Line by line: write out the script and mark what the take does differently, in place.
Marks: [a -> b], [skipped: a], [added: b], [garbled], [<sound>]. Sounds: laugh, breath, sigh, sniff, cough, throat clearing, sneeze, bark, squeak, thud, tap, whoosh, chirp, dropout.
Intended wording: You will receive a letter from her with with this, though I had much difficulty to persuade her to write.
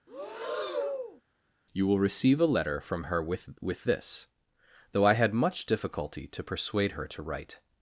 [breath] You will receive a letter from her with with this, though I had much difficulty to persuade her to write.